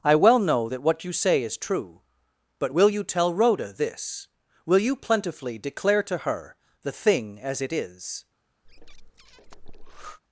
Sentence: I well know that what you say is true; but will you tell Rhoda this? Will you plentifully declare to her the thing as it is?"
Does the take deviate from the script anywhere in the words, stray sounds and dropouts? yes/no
yes